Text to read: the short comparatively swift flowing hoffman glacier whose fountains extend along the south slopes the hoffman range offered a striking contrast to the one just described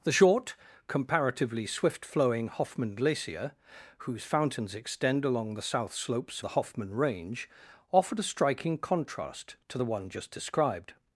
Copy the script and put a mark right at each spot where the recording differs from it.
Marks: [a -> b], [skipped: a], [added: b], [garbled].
the short comparatively swift flowing hoffman glacier whose fountains extend along the south slopes the hoffman range offered a striking contrast to the one just described